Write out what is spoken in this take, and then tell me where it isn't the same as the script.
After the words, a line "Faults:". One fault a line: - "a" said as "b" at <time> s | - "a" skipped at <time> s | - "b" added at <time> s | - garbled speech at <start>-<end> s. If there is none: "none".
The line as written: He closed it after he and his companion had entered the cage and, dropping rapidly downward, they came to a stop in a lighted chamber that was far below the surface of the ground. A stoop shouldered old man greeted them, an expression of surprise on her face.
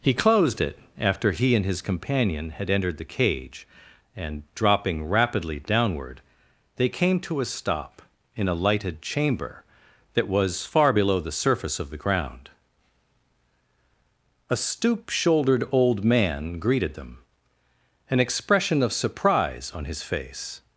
He closed it after he and his companion had entered the cage and, dropping rapidly downward, they came to a stop in a lighted chamber that was far below the surface of the ground. A stoop shouldered old man greeted them, an expression of surprise on his face.
Faults:
- "her" said as "his" at 19.9 s